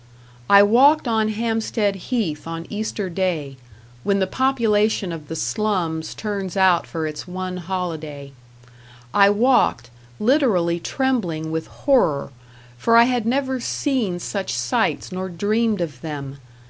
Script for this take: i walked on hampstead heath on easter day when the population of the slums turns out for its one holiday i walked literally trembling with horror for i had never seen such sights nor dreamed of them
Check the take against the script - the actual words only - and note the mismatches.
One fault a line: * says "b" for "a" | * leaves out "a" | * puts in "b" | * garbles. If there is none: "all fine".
all fine